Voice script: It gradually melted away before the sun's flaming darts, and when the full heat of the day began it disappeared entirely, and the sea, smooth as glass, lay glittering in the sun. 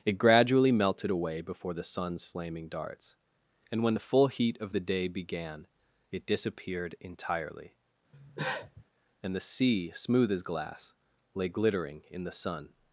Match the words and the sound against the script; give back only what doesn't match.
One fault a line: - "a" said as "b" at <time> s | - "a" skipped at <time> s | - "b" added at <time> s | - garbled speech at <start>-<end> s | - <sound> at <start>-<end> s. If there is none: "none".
- cough at 8.1-8.8 s